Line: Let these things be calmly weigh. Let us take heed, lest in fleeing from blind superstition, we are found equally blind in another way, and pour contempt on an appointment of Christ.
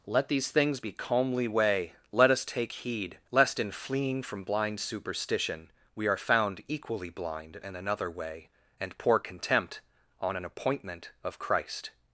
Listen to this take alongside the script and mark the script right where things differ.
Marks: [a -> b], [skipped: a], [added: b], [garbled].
Let these things be calmly weigh. Let us take heed, lest in fleeing from blind superstition, we are found equally blind in another way, and pour contempt on an appointment of Christ.